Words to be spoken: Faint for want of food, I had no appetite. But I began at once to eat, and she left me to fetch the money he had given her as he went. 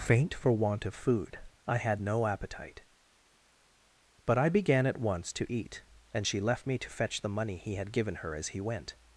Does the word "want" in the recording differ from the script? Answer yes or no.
no